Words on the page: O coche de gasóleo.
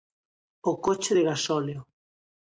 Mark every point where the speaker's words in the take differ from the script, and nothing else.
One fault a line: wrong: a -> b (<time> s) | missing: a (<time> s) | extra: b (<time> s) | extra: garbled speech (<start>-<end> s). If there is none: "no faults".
no faults